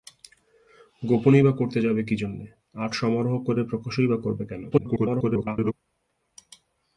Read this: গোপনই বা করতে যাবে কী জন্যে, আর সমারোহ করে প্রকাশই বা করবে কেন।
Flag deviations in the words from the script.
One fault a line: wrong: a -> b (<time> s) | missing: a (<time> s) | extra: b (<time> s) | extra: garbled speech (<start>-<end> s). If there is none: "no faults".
extra: garbled speech (4.7-5.7 s)